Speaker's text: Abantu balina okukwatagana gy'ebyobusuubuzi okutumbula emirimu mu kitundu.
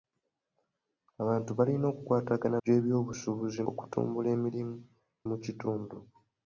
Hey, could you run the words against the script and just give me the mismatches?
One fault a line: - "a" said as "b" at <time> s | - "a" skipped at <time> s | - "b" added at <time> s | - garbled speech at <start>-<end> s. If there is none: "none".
none